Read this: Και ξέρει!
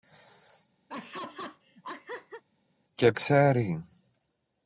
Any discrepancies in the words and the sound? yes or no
yes